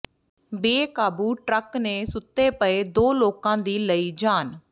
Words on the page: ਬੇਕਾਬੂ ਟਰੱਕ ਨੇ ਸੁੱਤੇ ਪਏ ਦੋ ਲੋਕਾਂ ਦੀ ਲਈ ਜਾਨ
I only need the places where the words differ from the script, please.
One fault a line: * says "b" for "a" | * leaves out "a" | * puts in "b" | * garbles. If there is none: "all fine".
all fine